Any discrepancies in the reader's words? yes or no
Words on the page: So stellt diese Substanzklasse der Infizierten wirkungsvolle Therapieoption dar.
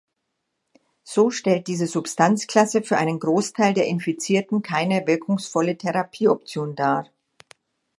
yes